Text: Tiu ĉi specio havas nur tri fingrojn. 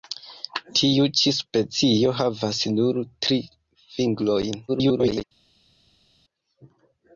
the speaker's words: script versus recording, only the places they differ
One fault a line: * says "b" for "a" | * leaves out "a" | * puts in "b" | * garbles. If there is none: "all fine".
* garbles